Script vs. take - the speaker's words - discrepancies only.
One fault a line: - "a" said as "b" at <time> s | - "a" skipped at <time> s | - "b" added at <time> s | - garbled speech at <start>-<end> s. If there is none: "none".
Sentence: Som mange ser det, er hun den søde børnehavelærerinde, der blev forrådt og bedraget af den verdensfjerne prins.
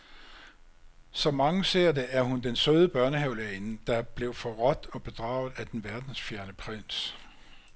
none